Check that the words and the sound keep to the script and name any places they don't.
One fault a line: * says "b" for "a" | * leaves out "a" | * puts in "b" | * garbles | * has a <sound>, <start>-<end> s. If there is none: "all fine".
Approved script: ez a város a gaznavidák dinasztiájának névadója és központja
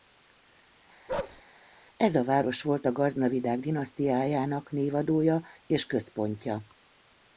* has a bark, 1.1-1.4 s
* puts in "volt"